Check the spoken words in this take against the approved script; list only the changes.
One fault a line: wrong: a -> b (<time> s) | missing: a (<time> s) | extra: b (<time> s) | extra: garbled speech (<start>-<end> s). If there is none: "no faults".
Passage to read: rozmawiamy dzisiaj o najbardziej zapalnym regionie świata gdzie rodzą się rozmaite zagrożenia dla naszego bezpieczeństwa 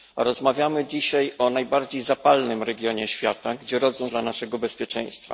missing: się rozmaite zagrożenia (4.1 s)